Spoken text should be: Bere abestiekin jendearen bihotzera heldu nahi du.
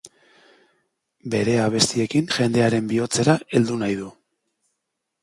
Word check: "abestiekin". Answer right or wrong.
right